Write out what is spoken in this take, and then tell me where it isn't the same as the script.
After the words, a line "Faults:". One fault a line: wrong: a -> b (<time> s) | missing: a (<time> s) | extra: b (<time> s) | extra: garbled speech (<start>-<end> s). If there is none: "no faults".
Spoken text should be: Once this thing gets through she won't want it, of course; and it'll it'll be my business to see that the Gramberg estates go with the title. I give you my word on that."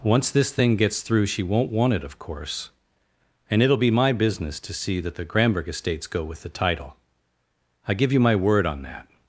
Once this thing gets through she won't want it, of course; and it'll be my business to see that the Gramberg estates go with the title. I give you my word on that."
Faults:
missing: it'll (3.8 s)